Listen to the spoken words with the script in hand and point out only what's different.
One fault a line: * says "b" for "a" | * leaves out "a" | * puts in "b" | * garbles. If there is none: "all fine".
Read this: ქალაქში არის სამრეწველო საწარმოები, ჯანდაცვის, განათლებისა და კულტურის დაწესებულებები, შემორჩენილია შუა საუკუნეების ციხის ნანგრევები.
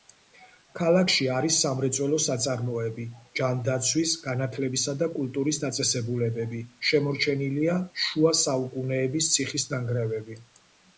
all fine